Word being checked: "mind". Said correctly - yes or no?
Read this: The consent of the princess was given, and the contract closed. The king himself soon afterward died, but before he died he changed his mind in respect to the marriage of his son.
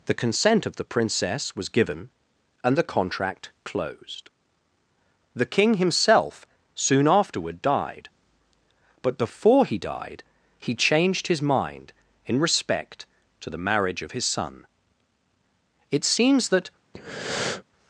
yes